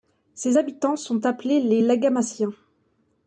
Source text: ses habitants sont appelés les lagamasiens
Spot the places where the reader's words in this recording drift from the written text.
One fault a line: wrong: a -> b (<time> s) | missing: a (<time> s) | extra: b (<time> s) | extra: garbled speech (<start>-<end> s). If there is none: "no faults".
no faults